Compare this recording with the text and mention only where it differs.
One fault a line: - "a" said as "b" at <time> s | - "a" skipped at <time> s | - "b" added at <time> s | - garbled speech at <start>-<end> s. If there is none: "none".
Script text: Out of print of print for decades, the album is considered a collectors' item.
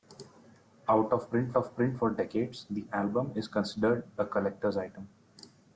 none